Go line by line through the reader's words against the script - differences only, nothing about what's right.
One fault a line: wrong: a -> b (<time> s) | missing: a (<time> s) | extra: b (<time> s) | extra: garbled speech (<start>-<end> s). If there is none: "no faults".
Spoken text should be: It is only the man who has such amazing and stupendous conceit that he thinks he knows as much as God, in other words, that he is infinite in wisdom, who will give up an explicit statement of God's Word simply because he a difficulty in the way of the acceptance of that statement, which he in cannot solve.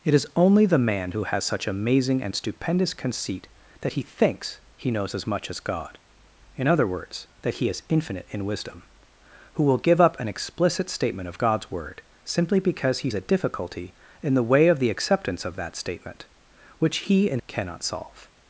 no faults